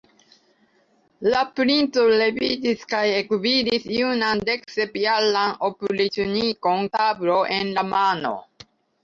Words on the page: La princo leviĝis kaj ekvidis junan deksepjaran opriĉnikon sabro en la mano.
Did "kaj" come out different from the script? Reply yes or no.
no